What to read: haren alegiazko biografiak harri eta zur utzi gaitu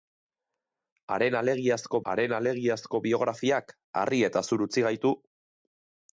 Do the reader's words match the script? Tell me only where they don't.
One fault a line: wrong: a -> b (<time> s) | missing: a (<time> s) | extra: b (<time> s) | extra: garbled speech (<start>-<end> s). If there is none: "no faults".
extra: haren alegiazko (2.1 s)